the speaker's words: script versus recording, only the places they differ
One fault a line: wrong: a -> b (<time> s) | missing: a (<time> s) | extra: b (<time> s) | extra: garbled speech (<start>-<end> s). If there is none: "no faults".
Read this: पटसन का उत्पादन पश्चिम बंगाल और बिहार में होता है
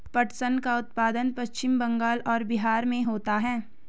no faults